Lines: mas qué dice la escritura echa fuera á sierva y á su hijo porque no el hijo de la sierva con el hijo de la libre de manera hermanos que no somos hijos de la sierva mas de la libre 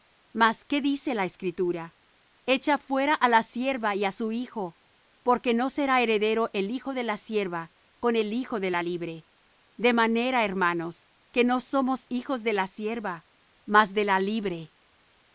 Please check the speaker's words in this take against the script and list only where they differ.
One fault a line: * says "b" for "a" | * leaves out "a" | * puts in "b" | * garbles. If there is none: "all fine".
* puts in "la"
* puts in "será heredero"